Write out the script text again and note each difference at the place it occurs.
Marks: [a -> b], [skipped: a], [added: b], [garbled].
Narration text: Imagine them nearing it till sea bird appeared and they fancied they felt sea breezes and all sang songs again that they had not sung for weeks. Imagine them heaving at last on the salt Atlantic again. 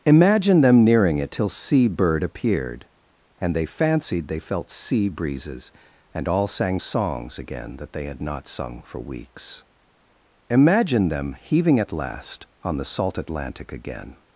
Imagine them nearing it till sea bird appeared and they fancied they felt sea breezes and all sang songs again that they had not sung for weeks. Imagine them heaving at last on the salt Atlantic again.